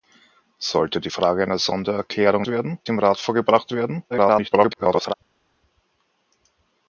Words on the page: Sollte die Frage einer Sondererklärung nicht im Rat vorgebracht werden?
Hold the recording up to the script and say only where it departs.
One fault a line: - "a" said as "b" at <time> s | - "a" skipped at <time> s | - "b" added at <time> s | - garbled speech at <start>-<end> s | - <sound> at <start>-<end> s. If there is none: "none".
- "nicht" said as "werden" at 2.5 s
- garbled speech at 4.1-5.1 s